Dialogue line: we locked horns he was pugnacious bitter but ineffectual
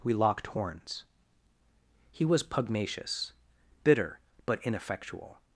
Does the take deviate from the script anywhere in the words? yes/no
no